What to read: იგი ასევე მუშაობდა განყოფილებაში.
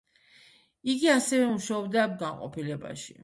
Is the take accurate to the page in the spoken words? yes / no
yes